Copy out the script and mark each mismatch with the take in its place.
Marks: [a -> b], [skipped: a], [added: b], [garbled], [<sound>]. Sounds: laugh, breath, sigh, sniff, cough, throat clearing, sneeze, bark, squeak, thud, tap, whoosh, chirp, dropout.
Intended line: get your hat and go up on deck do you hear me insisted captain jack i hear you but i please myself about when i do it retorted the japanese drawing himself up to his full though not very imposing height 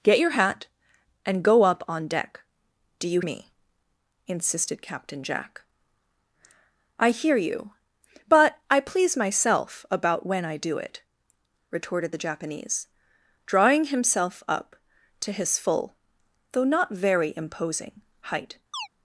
get your hat and go up on deck do you [skipped: hear] me insisted captain jack i hear you but i please myself about when i do it retorted the japanese drawing himself up to his full though not very imposing height [chirp]